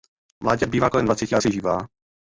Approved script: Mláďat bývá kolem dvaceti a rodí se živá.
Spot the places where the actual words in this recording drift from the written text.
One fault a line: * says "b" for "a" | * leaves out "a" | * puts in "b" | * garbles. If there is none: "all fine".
* leaves out "rodí"